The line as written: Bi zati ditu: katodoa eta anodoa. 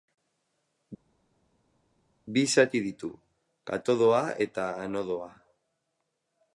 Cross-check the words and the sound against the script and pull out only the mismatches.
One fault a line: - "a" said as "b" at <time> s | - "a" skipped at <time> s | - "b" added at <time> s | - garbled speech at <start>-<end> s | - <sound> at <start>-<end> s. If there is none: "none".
none